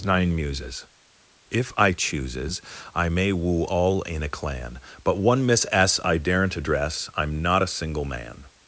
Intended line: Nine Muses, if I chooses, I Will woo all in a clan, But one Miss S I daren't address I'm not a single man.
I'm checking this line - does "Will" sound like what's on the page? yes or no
no